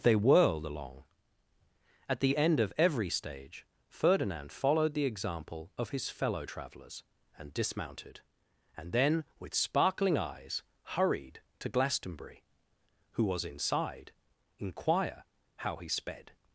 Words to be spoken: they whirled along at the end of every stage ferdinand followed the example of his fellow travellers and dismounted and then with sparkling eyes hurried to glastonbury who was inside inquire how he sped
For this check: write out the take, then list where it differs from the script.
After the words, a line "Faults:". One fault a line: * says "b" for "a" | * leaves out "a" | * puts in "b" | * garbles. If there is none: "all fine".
they whirled along at the end of every stage ferdinand followed the example of his fellow travellers and dismounted and then with sparkling eyes hurried to glastonbury who was inside inquire how he sped
Faults:
all fine